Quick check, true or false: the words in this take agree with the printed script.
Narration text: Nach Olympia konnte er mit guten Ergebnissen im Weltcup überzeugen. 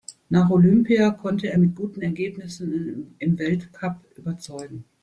true